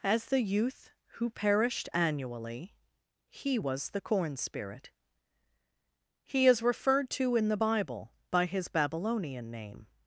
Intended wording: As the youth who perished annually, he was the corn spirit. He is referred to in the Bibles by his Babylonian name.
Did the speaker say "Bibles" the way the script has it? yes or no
no